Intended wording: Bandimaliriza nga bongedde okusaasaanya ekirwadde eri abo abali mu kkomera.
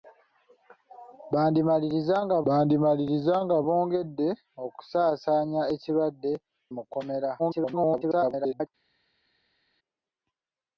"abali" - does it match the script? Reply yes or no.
no